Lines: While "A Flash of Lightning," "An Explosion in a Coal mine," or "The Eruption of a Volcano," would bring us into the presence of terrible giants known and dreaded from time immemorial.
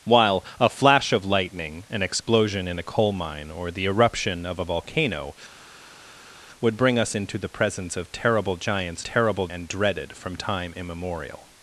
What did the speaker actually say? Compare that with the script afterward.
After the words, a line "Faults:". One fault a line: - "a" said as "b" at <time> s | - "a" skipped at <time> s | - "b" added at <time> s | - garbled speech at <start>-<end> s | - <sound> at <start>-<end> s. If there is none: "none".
While "A Flash of Lightning," "An Explosion in a Coal mine," or "The Eruption of a Volcano," would bring us into the presence of terrible giants terrible and dreaded from time immemorial.
Faults:
- "known" said as "terrible" at 9.0 s